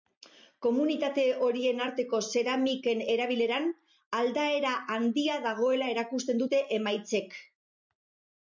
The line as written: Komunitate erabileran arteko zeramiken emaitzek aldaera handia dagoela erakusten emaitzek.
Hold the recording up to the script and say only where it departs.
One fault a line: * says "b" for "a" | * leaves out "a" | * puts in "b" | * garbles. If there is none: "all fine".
* says "horien" for "erabileran"
* says "erabileran" for "emaitzek"
* puts in "dute"